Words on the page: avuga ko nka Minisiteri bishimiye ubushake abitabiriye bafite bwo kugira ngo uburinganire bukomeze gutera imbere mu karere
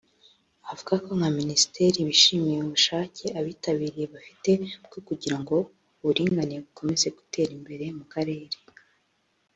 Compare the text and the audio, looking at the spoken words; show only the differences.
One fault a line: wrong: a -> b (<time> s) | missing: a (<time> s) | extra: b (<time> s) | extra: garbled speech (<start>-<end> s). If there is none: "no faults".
no faults